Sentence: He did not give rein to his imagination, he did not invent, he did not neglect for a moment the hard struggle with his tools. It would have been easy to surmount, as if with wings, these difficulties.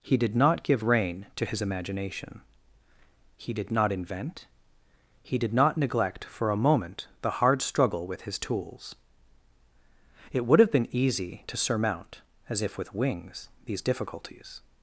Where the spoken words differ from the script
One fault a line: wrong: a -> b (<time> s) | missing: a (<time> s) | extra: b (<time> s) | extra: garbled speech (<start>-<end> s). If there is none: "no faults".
no faults